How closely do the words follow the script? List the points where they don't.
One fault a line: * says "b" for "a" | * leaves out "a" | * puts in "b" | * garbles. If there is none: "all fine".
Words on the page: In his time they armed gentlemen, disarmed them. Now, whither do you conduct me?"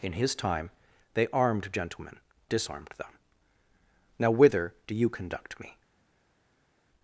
all fine